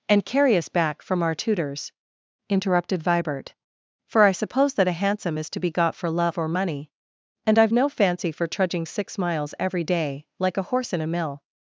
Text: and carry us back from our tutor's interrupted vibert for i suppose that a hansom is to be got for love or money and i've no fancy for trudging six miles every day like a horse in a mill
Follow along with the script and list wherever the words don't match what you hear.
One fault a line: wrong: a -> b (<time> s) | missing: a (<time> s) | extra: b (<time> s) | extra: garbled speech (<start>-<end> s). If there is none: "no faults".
no faults